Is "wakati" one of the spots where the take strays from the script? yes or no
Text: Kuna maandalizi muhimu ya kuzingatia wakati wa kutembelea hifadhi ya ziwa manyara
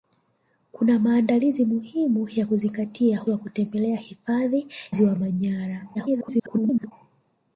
yes